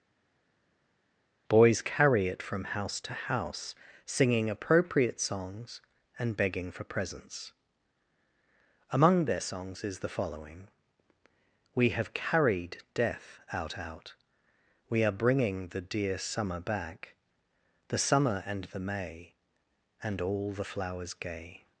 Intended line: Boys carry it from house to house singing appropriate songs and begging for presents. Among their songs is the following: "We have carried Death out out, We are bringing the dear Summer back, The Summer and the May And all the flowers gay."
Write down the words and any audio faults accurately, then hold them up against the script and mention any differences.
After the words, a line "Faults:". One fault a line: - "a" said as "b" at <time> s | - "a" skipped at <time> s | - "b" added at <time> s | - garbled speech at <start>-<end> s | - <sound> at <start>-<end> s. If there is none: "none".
Boys carry it from house to house singing appropriate songs and begging for presents. Among their songs is the following: "We have carried Death out out, We are bringing the dear Summer back, The Summer and the May And all the flowers gay."
Faults:
none